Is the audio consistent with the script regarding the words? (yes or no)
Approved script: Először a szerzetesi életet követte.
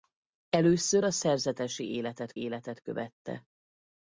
no